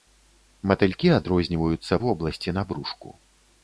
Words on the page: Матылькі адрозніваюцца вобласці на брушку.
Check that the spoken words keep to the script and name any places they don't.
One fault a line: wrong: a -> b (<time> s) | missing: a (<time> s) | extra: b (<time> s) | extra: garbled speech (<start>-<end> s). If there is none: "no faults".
no faults